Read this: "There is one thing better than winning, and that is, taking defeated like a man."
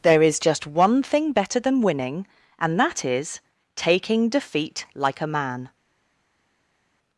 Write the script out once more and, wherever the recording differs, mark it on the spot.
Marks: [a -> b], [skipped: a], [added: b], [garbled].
"There is [added: just] one thing better than winning, and that is, taking [defeated -> defeat] like a man."